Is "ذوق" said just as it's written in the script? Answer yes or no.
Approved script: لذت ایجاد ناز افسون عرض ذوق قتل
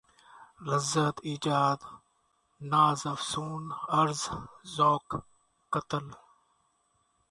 yes